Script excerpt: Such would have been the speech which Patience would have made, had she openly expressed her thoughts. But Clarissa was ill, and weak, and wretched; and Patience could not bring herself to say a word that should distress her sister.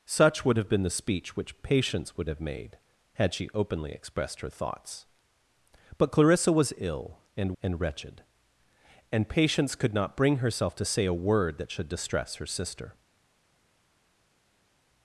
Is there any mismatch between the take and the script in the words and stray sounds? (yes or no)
yes